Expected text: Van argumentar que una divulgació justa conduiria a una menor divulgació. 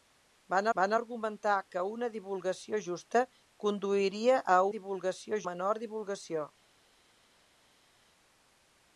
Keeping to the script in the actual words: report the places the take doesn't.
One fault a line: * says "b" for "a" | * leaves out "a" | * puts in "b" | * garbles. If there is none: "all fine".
* puts in "van"
* says "divulgació" for "una"